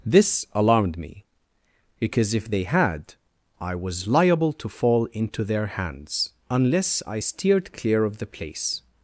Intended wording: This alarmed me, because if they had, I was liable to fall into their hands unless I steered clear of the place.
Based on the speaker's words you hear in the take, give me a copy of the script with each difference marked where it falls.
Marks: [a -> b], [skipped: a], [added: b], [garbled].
This alarmed me, because if they had, I was liable to fall into their hands unless I steered clear of the place.